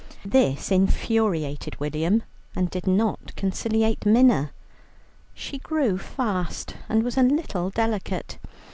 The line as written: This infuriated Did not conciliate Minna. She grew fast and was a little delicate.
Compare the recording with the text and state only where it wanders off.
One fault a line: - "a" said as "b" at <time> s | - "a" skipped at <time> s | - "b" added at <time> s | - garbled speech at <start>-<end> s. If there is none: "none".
- "William and" added at 1.8 s